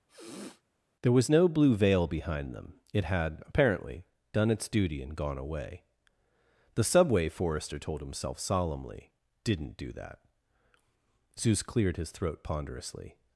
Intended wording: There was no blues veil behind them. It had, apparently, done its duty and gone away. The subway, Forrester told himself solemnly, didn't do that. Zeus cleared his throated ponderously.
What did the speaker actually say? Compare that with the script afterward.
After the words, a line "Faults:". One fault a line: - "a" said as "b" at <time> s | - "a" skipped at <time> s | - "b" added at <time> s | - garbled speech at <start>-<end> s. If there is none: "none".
There was no blue veil behind them. It had, apparently, done its duty and gone away. The subway, Forrester told himself solemnly, didn't do that. Zeus cleared his throat ponderously.
Faults:
- "blues" said as "blue" at 1.5 s
- "throated" said as "throat" at 12.1 s